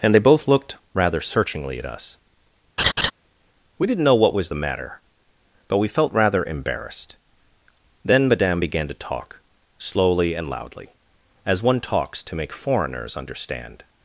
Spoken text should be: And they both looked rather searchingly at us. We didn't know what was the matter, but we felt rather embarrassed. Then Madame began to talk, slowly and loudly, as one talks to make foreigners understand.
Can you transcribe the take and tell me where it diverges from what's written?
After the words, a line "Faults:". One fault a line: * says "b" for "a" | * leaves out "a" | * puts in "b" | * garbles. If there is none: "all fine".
And they both looked rather searchingly at us. We didn't know what was the matter, but we felt rather embarrassed. Then Madame began to talk, slowly and loudly, as one talks to make foreigners understand.
Faults:
all fine